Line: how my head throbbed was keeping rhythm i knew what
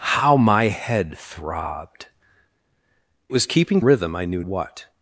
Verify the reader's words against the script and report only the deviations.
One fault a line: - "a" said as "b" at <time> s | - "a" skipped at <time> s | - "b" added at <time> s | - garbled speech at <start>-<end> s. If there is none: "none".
none